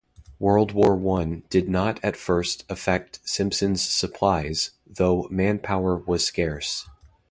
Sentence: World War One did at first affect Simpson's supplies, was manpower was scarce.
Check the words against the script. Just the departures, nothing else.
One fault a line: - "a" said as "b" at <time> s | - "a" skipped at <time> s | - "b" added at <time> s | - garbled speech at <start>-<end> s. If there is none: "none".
- "not" added at 1.7 s
- "was" said as "though" at 4.9 s